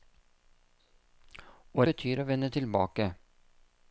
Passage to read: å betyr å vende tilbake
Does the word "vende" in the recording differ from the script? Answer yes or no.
no